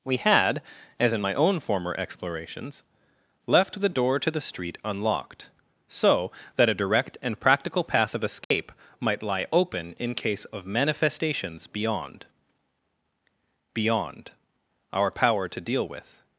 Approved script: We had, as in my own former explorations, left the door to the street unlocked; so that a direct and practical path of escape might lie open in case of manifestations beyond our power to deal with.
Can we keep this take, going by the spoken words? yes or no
no